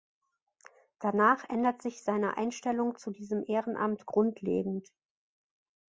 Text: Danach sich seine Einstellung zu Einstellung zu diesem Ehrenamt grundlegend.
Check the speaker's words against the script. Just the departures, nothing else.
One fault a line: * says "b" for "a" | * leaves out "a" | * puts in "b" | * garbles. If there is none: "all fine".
* puts in "ändert"
* leaves out "Einstellung zu"